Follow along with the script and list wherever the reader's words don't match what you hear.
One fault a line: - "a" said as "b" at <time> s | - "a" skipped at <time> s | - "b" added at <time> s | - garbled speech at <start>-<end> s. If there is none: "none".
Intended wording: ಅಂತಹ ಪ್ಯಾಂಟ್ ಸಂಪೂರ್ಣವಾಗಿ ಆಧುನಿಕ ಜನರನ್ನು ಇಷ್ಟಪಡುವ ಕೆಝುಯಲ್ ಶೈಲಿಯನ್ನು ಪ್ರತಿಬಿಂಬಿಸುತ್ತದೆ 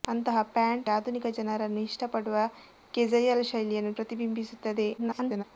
- "ಸಂಪೂರ್ಣವಾಗಿ" skipped at 0.9 s
- garbled speech at 5.0-5.4 s